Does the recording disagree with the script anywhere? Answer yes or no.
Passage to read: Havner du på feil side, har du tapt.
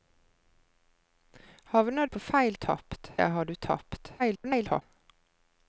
yes